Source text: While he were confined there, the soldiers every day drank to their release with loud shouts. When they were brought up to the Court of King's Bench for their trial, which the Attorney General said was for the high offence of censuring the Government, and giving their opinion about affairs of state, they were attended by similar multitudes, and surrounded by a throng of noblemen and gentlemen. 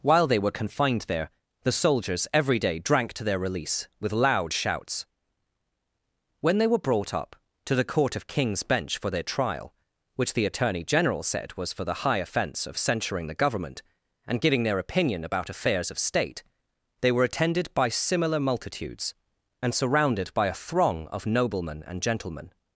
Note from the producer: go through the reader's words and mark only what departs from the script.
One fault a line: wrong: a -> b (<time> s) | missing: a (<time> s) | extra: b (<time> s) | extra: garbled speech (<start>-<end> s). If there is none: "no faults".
wrong: he -> they (0.2 s)